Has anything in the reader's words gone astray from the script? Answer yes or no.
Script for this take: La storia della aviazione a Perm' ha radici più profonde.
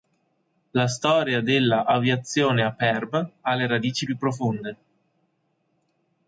yes